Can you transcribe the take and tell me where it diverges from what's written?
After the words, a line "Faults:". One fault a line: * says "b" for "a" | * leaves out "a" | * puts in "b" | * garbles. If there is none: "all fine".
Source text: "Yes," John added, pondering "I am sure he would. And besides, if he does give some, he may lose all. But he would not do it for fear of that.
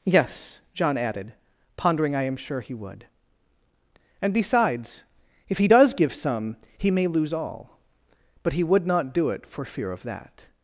"Yes," John added, pondering "I am sure he would. And besides, if he does give some, he may lose all. But he would not do it for fear of that.
Faults:
all fine